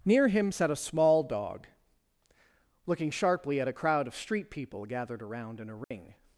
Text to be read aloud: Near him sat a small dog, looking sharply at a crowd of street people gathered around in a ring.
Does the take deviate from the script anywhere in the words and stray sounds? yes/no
yes